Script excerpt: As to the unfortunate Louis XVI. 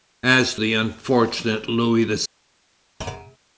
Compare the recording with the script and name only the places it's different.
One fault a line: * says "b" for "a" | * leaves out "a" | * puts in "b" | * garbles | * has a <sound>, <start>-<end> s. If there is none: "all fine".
* leaves out "to"
* has a thud, 3.0-3.4 s